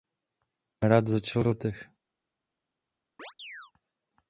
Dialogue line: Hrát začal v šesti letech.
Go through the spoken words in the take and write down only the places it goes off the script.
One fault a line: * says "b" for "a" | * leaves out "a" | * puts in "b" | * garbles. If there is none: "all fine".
* leaves out "šesti"